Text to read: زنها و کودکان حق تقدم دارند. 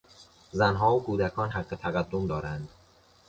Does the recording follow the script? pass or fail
pass